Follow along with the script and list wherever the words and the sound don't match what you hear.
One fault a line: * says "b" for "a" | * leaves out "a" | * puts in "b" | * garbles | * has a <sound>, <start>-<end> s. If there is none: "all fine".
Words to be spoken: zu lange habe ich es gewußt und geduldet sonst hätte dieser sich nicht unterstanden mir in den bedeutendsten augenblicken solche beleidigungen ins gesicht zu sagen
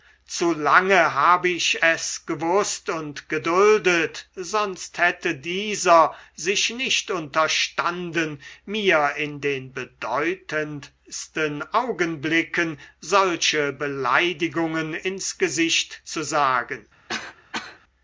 * has a cough, 17.1-17.8 s